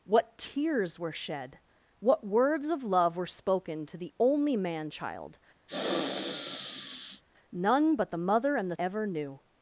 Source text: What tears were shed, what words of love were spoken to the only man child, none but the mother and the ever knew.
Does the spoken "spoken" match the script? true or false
true